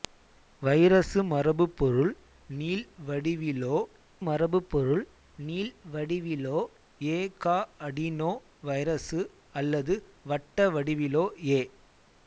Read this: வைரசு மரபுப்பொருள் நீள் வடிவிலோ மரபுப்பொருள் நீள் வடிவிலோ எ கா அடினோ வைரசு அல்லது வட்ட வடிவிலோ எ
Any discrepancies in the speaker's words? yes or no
no